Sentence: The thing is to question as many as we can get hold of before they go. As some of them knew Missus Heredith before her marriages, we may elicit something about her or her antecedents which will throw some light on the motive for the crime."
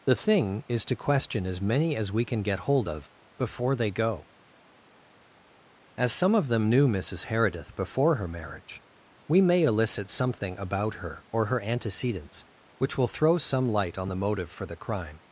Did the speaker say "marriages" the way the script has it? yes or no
no